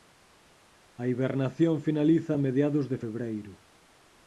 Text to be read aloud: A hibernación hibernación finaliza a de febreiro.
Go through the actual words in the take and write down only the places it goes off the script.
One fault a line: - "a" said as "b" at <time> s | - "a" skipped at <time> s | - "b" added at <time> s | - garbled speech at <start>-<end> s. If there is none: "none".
- "hibernación" skipped at 1.8 s
- "mediados" added at 2.5 s